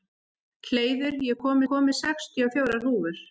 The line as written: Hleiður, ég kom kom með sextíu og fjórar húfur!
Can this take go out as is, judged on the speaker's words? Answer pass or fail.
pass